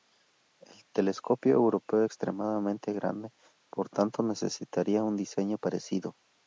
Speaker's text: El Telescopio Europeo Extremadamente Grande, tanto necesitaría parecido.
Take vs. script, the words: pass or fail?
fail